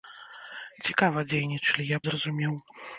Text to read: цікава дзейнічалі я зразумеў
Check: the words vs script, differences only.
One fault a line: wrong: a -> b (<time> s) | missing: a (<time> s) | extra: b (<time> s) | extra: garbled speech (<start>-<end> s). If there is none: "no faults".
no faults